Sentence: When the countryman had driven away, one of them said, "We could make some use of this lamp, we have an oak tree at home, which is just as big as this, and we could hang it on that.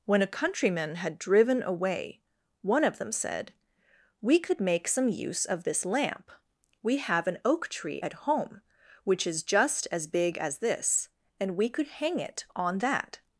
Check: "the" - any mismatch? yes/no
yes